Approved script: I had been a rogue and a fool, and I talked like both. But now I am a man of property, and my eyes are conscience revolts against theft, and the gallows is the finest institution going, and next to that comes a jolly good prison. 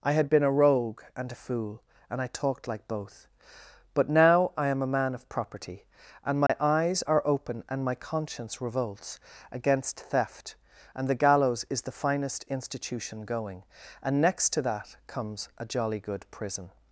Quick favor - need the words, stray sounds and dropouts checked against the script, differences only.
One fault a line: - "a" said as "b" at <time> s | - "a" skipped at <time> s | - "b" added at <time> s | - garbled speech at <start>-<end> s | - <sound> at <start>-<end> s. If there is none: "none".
- dropout at 6.5-6.5 s
- "open and my" added at 7.3 s